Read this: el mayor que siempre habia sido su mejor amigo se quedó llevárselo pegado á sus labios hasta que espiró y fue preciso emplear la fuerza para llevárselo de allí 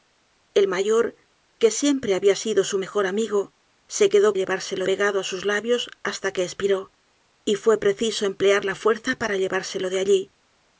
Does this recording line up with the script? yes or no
yes